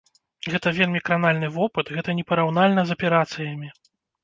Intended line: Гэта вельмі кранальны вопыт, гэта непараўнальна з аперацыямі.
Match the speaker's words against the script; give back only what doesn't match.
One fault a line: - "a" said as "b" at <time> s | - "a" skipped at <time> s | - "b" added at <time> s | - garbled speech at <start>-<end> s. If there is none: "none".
none